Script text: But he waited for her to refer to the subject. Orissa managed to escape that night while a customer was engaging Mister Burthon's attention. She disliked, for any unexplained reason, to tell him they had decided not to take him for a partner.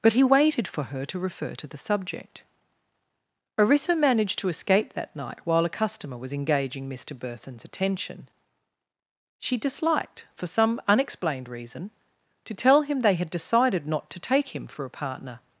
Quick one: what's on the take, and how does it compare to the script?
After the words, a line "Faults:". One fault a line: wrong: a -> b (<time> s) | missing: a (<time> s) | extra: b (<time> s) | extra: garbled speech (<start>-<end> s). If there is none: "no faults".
But he waited for her to refer to the subject. Orissa managed to escape that night while a customer was engaging Mister Burthon's attention. She disliked, for some unexplained reason, to tell him they had decided not to take him for a partner.
Faults:
wrong: any -> some (10.5 s)